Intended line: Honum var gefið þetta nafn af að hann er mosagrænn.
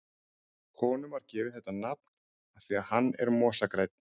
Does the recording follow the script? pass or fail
fail